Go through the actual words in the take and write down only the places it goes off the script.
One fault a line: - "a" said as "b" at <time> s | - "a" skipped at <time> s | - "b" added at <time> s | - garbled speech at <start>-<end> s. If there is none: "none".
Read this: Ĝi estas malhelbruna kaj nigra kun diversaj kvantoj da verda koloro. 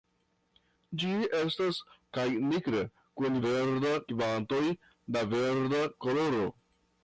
- "malhelbruna" skipped at 1.8 s
- "diversaj" said as "verda" at 3.5 s